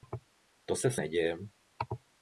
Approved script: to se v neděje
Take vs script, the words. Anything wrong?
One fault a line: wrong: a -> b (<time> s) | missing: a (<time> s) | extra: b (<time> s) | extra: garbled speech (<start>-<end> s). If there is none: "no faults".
no faults